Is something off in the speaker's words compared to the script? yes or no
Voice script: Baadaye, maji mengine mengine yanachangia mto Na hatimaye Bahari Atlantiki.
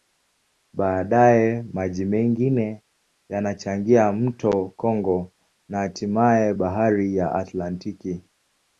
yes